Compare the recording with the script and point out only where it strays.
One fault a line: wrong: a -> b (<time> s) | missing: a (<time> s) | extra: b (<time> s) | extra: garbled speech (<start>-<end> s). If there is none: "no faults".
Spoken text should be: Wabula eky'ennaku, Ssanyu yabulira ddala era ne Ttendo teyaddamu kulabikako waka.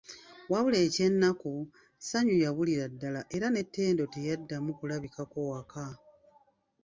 no faults